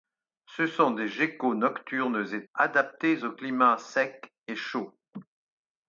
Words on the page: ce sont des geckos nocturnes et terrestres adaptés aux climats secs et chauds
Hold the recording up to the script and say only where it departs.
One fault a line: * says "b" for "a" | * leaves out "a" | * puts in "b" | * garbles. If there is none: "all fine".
* leaves out "terrestres"